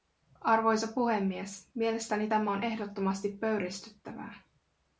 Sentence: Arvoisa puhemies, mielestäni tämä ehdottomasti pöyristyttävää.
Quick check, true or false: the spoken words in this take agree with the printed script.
false